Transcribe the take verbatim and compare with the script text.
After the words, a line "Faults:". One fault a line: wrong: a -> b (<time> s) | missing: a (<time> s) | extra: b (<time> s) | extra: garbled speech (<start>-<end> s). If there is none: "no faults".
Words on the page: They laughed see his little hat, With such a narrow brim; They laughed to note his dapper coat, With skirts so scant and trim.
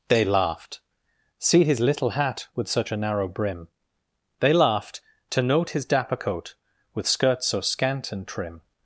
They laughed see his little hat, With such a narrow brim; They laughed to note his dapper coat, With skirts so scant and trim.
Faults:
no faults